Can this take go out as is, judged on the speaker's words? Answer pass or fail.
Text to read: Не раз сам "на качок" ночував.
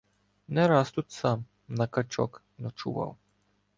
fail